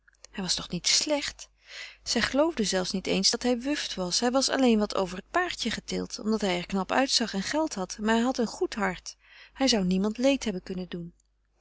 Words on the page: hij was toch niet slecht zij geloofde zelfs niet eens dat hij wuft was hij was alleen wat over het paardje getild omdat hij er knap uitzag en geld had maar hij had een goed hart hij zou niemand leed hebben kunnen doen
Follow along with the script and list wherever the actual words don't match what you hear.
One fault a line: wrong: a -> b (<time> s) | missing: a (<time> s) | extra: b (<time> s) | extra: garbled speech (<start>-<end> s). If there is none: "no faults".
no faults